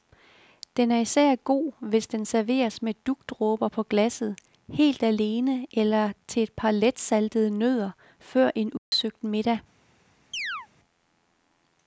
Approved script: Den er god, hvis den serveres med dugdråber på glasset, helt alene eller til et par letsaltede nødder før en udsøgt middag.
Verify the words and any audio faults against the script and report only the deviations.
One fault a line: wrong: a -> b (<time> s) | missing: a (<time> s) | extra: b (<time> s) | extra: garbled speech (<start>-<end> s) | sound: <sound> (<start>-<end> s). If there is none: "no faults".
extra: især (1.0 s)
sound: dropout (8.8-8.9 s)
sound: chirp (10.3-10.7 s)